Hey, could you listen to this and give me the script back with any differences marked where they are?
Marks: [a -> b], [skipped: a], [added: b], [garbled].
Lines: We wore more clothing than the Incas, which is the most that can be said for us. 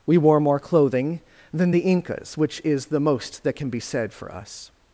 We wore more clothing than the Incas, which is the most that can be said for us.